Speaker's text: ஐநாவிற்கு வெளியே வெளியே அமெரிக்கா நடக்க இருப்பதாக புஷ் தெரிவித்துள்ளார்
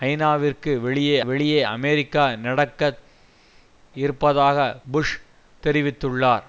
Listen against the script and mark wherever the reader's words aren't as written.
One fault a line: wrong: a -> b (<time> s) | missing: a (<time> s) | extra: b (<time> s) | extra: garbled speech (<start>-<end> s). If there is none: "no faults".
no faults